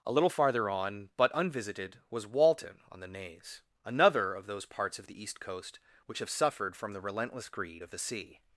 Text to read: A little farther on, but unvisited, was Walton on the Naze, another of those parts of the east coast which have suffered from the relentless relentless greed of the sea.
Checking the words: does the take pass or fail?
fail